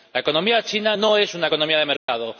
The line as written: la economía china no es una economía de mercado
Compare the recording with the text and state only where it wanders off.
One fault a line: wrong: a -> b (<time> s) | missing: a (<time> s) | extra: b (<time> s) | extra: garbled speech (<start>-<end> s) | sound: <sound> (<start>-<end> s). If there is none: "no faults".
sound: dropout (2.0-2.1 s)